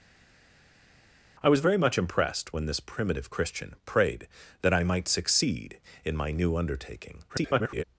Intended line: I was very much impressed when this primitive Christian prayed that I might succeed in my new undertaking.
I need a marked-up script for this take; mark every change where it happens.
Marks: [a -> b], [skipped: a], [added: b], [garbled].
I was very much impressed when this primitive Christian prayed that I might succeed in my new undertaking. [garbled]